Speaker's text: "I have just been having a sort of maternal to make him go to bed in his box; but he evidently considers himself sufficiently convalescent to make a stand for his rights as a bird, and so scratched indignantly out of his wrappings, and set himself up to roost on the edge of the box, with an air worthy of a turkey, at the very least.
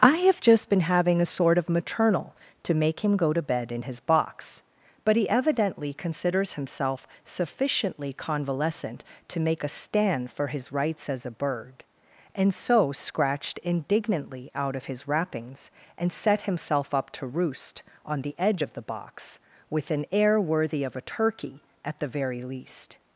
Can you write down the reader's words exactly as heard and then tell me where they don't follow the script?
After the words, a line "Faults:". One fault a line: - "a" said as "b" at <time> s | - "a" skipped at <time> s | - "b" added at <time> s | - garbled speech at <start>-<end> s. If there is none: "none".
"I have just been having a sort of maternal to make him go to bed in his box; but he evidently considers himself sufficiently convalescent to make a stand for his rights as a bird, and so scratched indignantly out of his wrappings, and set himself up to roost on the edge of the box, with an air worthy of a turkey, at the very least.
Faults:
none